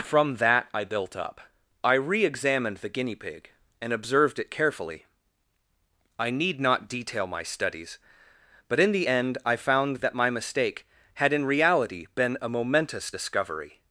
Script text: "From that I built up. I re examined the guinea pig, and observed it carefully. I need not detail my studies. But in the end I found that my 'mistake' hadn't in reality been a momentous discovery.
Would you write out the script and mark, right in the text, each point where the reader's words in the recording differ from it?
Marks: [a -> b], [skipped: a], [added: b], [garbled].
"From that I built up. I re examined the guinea pig, and observed it carefully. I need not detail my studies. But in the end I found that my 'mistake' [hadn't -> had] in reality been a momentous discovery.